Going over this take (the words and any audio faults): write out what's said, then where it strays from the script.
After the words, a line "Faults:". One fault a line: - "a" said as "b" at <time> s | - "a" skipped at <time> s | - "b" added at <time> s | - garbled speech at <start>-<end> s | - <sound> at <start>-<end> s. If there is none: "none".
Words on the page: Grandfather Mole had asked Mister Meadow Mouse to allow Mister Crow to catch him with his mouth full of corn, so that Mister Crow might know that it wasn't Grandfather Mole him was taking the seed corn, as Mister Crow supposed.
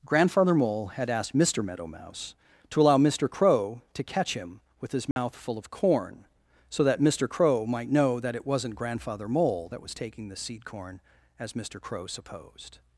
Grandfather Mole had asked Mister Meadow Mouse to allow Mister Crow to catch him with his mouth full of corn, so that Mister Crow might know that it wasn't Grandfather Mole that was taking the seed corn, as Mister Crow supposed.
Faults:
- dropout at 5.1-5.2 s
- "him" said as "that" at 9.7 s